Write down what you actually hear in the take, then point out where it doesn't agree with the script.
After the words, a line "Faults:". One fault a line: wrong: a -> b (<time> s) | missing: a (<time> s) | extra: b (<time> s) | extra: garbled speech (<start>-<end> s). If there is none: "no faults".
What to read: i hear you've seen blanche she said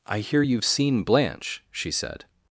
i hear you've seen blanche she said
Faults:
no faults